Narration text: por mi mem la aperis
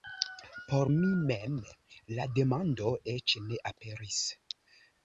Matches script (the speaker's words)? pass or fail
fail